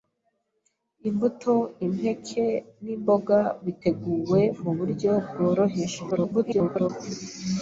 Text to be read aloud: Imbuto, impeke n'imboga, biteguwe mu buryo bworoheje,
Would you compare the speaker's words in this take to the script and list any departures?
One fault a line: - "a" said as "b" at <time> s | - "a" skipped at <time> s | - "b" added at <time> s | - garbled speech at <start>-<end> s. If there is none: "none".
- garbled speech at 6.1-6.9 s